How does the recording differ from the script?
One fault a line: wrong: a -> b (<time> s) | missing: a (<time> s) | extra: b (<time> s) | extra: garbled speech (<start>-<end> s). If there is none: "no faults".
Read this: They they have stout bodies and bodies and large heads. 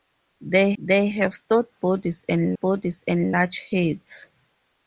no faults